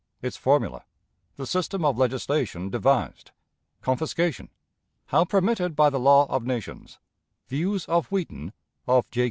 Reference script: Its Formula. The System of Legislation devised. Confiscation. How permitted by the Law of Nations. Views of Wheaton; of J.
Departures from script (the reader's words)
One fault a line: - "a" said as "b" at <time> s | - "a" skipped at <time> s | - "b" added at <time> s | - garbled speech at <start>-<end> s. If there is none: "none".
none